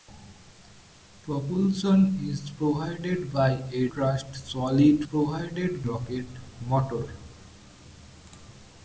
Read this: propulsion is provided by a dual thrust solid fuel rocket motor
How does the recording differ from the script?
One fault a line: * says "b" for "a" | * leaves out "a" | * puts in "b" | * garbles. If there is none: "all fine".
* leaves out "dual"
* says "provided" for "fuel"